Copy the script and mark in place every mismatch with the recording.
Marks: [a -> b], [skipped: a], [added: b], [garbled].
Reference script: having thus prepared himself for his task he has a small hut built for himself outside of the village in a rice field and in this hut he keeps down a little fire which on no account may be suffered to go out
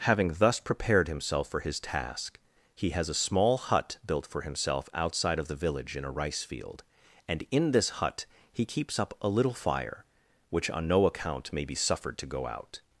having thus prepared himself for his task he has a small hut built for himself outside of the village in a rice field and in this hut he keeps [down -> up] a little fire which on no account may be suffered to go out